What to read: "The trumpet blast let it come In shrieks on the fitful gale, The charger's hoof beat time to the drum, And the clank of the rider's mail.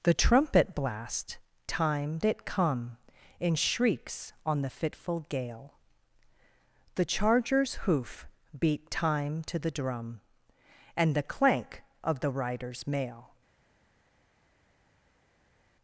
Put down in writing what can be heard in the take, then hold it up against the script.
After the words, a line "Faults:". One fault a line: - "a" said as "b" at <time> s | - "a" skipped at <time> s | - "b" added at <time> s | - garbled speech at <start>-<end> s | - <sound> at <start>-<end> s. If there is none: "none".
"The trumpet blast time it come In shrieks on the fitful gale, The charger's hoof beat time to the drum, And the clank of the rider's mail.
Faults:
- "let" said as "time" at 1.7 s